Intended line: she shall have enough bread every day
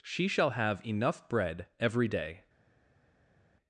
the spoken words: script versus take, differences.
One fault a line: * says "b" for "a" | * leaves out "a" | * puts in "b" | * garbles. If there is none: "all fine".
all fine